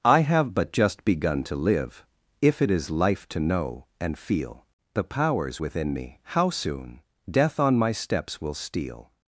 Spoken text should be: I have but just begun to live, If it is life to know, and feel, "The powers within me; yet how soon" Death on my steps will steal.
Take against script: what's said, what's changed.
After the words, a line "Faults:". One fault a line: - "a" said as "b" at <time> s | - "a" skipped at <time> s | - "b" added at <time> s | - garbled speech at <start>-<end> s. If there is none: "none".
I have but just begun to live, If it is life to know, and feel, "The powers within me; how soon" Death on my steps will steal.
Faults:
- "yet" skipped at 6.2 s